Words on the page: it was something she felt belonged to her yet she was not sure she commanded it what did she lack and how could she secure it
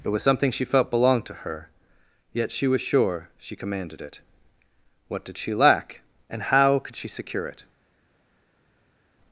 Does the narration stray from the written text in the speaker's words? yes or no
yes